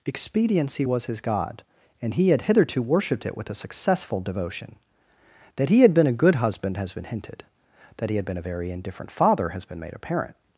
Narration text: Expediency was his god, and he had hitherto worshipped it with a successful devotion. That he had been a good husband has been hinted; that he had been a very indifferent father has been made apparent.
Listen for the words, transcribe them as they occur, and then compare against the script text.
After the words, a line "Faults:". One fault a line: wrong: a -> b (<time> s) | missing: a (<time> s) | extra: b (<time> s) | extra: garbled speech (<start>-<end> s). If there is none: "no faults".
Expediency was his god, and he had hitherto worshipped it with a successful devotion. That he had been a good husband has been hinted; that he had been a very indifferent father has been made apparent.
Faults:
no faults